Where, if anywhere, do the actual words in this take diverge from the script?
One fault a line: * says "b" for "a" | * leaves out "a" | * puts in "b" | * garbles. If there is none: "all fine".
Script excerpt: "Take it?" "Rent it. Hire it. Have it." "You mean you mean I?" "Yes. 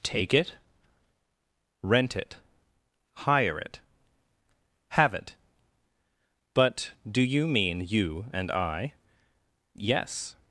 * puts in "But do"
* says "and" for "mean"